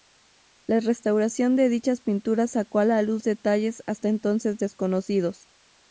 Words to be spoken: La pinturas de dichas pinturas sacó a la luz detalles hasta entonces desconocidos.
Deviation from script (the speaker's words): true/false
true